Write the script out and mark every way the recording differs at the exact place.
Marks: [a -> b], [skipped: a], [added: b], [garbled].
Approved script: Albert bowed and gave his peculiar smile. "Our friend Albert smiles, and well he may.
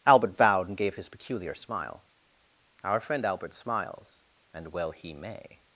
Albert bowed and gave his peculiar smile. "Our friend Albert smiles, and well he may.